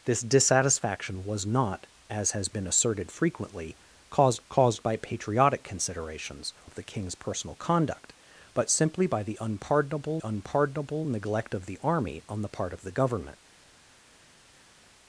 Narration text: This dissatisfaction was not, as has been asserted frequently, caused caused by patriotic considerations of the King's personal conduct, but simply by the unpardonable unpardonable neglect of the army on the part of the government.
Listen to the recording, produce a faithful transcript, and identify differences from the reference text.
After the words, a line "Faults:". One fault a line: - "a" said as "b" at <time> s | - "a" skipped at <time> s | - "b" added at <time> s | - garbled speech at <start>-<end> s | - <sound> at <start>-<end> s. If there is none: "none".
This dissatisfaction was not, as has been asserted frequently, caused caused by patriotic considerations of the King's personal conduct, but simply by the unpardonable unpardonable neglect of the army on the part of the government.
Faults:
none